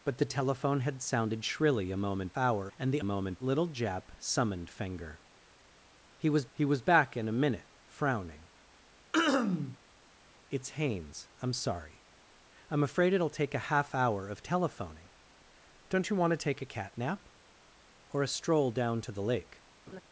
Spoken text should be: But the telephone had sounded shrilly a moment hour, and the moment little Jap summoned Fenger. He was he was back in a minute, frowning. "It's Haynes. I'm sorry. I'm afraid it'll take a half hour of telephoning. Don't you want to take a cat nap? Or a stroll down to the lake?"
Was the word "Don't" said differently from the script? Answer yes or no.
no